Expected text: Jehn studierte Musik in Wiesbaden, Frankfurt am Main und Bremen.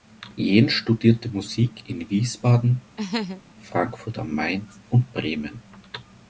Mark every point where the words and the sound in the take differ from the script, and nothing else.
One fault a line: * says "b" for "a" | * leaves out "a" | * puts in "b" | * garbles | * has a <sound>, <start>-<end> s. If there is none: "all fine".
* has a laugh, 3.0-3.4 s